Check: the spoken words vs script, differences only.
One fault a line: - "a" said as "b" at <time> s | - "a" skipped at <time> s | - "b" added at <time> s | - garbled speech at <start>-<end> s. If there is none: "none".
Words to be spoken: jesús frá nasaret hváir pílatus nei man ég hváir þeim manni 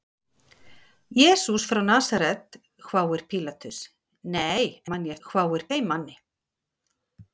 none